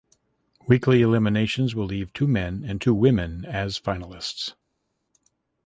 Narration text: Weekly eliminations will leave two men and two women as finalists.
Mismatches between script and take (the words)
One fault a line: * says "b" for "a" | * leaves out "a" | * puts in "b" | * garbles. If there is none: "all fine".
all fine